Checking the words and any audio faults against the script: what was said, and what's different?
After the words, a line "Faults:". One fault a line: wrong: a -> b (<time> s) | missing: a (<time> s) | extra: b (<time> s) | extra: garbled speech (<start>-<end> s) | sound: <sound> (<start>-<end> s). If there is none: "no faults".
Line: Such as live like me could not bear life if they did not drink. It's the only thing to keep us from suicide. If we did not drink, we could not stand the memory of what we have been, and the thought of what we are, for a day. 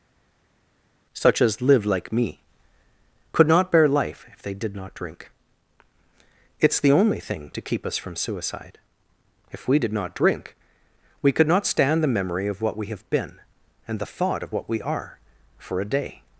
Such as live like me could not bear life if they did not drink. It's the only thing to keep us from suicide. If we did not drink, we could not stand the memory of what we have been, and the thought of what we are, for a day.
Faults:
no faults